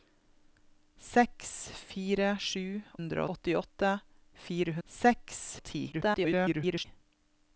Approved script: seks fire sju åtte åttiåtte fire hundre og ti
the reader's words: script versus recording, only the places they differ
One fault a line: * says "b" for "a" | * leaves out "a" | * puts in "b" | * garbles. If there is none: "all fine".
* says "hundre" for "åtte"
* says "seks" for "hundre"
* garbles